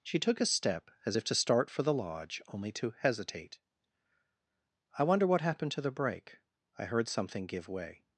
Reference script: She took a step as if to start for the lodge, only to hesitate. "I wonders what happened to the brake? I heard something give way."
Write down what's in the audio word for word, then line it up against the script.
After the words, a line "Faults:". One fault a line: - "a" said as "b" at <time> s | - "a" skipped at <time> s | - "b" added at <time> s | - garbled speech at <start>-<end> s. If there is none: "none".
She took a step as if to start for the lodge, only to hesitate. "I wonder what happened to the brake? I heard something give way."
Faults:
- "wonders" said as "wonder" at 5.0 s